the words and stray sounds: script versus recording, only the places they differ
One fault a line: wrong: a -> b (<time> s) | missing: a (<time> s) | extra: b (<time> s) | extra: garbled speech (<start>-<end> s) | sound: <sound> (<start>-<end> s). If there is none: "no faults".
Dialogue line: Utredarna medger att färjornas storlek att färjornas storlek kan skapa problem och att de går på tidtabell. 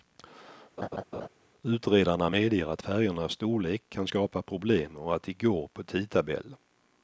sound: laugh (0.8-1.3 s)
missing: att färjornas storlek (3.8 s)